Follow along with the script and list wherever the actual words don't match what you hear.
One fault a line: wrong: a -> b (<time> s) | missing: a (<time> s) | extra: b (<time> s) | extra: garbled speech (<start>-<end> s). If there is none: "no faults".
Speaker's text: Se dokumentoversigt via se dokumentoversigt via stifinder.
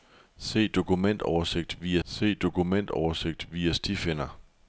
no faults